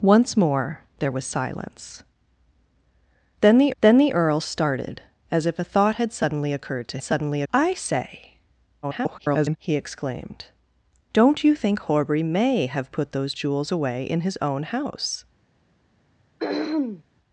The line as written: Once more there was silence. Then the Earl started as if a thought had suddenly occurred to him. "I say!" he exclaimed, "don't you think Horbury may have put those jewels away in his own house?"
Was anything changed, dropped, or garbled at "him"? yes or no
yes